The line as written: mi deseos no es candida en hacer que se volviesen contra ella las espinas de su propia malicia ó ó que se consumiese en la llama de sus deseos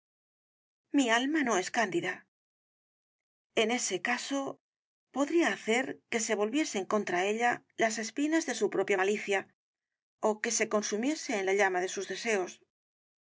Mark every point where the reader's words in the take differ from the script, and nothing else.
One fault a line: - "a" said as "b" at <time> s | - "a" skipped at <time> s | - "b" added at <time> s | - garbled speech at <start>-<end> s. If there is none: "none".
- "deseos" said as "alma" at 1.2 s
- "ese caso podría" added at 3.7 s
- "ó" skipped at 10.4 s